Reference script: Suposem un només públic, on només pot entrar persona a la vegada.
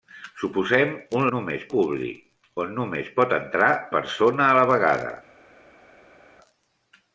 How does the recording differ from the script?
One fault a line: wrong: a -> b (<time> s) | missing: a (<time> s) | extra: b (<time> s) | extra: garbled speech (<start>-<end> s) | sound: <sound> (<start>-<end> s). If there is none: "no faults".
no faults